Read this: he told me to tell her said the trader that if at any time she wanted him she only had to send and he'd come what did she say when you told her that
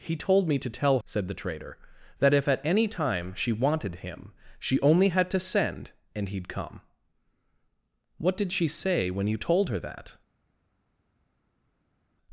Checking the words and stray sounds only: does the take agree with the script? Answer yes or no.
no